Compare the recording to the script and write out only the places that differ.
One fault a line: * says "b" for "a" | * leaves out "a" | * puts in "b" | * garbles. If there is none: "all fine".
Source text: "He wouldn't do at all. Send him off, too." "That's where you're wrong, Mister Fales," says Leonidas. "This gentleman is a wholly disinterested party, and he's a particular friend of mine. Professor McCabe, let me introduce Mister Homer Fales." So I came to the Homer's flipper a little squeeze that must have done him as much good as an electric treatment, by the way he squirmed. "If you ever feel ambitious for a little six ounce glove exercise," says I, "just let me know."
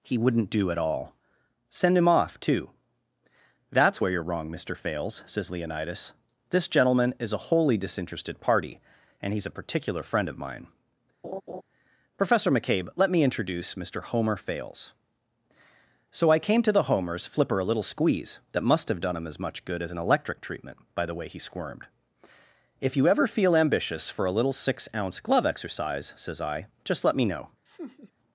all fine